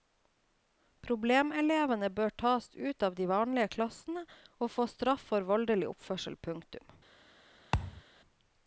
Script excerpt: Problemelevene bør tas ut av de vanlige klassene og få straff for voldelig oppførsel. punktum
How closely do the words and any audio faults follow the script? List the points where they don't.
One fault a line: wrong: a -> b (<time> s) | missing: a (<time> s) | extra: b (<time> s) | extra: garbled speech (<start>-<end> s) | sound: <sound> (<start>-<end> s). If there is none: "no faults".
sound: thud (7.7-8.0 s)